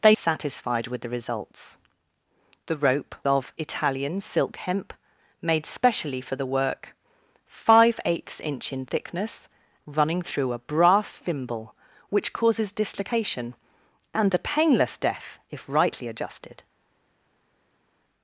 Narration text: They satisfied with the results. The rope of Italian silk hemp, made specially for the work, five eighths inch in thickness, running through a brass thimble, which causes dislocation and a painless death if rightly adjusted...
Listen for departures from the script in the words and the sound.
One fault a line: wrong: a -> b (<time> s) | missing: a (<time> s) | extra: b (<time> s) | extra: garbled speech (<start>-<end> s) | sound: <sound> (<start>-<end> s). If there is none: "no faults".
no faults